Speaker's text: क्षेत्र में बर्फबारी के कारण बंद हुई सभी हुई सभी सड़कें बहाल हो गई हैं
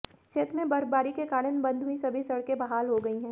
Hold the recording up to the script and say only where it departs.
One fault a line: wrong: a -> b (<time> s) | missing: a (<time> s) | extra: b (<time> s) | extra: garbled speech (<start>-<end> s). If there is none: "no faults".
missing: हुई सभी (2.2 s)